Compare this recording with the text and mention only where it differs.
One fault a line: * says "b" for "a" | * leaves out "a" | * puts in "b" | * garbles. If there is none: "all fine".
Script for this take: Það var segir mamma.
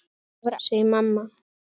all fine